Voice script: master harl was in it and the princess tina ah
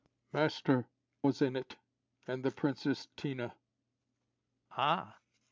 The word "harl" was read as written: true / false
false